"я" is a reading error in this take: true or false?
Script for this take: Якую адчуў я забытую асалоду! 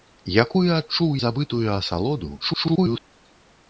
true